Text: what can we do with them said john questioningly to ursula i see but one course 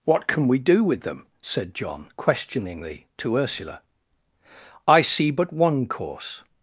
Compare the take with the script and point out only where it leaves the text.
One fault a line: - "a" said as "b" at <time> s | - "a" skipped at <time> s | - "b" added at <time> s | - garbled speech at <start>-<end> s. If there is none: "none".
none